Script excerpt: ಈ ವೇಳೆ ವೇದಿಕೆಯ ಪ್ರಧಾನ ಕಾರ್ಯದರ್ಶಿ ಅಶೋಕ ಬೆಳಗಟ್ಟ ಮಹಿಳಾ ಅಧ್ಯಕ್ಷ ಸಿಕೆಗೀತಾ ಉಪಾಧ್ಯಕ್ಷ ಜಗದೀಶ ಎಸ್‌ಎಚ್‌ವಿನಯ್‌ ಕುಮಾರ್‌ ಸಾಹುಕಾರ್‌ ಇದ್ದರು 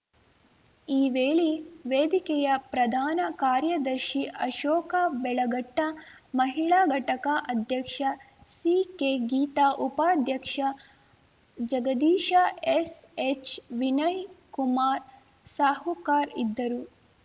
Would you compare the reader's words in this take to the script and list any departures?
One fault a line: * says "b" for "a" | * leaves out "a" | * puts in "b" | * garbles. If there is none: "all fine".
* puts in "ಘಟಕ"